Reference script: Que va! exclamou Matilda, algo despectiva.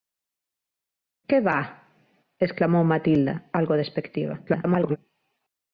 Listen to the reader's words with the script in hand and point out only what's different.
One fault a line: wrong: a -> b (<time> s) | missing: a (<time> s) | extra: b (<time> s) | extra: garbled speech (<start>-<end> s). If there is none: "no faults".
extra: garbled speech (4.5-5.0 s)